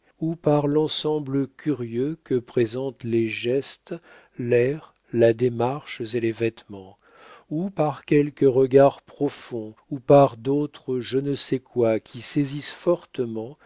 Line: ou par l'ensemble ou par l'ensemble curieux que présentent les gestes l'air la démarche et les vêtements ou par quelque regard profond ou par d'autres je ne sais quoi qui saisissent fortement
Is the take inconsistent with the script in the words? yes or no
yes